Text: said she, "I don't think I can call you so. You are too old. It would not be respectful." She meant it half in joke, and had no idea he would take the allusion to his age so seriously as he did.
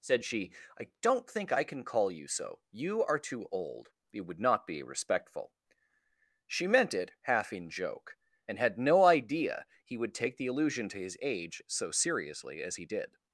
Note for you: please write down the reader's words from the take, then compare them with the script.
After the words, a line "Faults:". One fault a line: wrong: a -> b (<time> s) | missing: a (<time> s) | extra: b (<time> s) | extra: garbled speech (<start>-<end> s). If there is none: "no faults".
said she, "I don't think I can call you so. You are too old. It would not be respectful." She meant it half in joke, and had no idea he would take the allusion to his age so seriously as he did.
Faults:
no faults